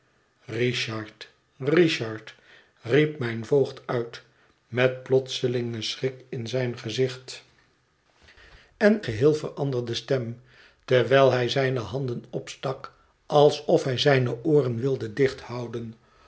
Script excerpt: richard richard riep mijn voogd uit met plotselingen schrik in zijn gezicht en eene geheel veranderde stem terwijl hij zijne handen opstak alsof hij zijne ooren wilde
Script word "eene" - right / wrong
wrong